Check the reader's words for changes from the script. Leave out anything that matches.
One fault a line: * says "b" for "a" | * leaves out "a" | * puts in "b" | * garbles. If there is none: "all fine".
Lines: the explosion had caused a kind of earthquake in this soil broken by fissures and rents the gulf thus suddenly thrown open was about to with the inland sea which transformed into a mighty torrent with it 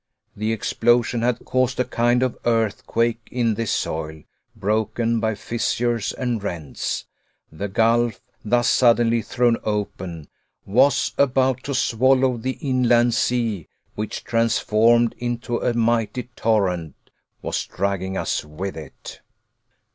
* says "swallow" for "with"
* puts in "was dragging us"